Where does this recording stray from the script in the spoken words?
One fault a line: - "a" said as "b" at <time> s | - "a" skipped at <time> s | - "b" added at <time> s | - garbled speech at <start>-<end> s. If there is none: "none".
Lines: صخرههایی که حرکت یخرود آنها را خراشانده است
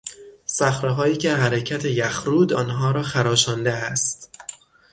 none